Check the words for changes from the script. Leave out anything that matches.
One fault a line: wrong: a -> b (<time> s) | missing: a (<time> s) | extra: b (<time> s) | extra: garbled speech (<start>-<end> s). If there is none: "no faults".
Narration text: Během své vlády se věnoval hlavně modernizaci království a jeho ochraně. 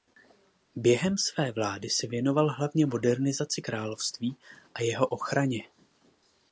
no faults